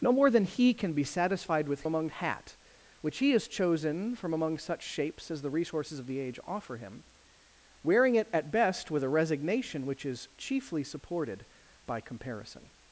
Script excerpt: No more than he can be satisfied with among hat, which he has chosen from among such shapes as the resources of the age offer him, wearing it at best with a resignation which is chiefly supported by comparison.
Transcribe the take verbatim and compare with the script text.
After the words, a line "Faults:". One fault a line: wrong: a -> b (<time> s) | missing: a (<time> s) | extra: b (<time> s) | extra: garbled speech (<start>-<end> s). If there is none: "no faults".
No more than he can be satisfied with among hat, which he has chosen from among such shapes as the resources of the age offer him, wearing it at best with a resignation which is chiefly supported by comparison.
Faults:
no faults